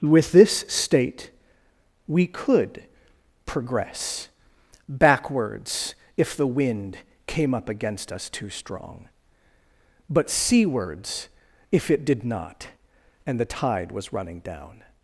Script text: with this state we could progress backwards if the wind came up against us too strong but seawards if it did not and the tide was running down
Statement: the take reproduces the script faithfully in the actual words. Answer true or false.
true